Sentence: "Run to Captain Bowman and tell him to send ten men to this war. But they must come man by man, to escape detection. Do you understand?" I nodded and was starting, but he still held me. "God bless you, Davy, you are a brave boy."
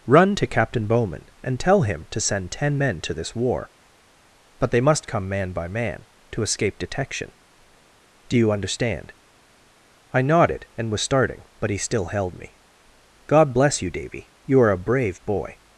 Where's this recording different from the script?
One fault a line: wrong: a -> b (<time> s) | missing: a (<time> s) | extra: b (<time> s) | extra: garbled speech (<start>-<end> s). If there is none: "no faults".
no faults